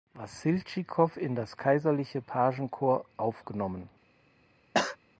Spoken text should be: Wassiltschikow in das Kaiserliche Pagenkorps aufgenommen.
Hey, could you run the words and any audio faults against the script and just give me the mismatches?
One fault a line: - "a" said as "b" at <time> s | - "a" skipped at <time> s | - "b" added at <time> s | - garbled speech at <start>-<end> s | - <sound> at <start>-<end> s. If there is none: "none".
- cough at 4.7-5.0 s